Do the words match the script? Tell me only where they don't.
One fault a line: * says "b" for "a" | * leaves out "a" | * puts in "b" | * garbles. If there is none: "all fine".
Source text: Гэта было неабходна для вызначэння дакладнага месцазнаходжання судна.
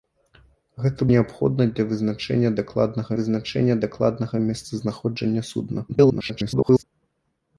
* leaves out "было"
* puts in "вызначэння дакладнага"
* garbles